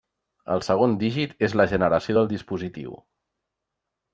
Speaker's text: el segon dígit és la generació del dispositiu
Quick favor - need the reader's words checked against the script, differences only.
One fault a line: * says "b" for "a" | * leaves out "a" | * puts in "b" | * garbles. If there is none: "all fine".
all fine